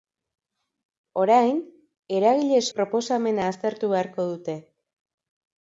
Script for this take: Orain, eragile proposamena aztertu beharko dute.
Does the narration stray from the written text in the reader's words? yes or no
no